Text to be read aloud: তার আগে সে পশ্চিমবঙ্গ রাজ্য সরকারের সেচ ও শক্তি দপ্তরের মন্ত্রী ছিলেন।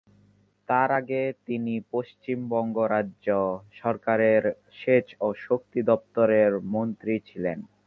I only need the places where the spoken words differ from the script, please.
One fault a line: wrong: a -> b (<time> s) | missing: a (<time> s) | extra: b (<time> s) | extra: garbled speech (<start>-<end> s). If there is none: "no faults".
wrong: সে -> তিনি (1.5 s)